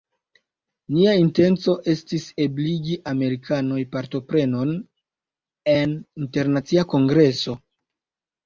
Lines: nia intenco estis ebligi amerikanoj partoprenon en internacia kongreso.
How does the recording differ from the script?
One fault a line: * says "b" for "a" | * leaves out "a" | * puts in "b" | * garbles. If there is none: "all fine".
all fine